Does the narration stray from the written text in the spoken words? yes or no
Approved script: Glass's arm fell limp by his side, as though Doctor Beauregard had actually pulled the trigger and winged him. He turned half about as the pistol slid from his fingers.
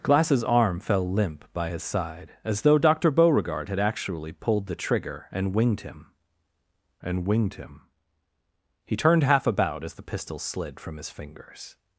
yes